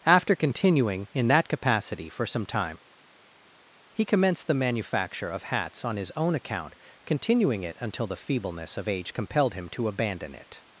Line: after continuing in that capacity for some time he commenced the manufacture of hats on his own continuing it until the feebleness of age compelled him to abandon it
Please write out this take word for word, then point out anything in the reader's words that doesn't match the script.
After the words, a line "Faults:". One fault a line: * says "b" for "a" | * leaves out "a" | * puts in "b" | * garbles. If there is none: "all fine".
after continuing in that capacity for some time he commenced the manufacture of hats on his own account continuing it until the feebleness of age compelled him to abandon it
Faults:
* puts in "account"